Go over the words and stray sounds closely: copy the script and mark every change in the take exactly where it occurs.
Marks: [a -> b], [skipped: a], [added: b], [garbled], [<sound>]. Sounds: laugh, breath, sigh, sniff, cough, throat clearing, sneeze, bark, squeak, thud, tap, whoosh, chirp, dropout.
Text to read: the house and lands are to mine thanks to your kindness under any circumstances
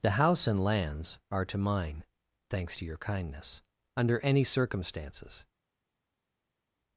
the house and lands are to mine thanks to your kindness under any circumstances